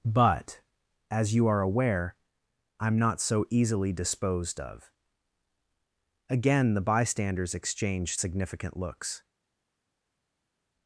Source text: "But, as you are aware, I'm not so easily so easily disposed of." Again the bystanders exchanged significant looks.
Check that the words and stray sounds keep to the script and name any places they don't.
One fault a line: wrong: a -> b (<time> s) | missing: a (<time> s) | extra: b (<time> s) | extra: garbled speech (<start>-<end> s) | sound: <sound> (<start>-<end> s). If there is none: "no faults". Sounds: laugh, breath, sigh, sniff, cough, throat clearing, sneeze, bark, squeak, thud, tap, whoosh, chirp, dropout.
missing: so easily (3.9 s)